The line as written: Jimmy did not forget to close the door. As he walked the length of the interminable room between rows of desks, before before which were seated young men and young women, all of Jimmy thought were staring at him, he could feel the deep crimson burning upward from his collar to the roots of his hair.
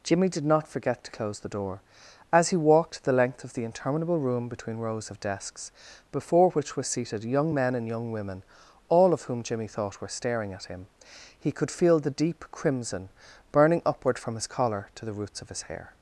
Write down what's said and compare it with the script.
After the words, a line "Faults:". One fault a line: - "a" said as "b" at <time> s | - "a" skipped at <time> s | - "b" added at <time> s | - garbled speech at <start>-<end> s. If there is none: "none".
Jimmy did not forget to close the door. As he walked the length of the interminable room between rows of desks, before which were seated young men and young women, all of whom Jimmy thought were staring at him, he could feel the deep crimson burning upward from his collar to the roots of his hair.
Faults:
- "before" skipped at 6.5 s
- "whom" added at 9.2 s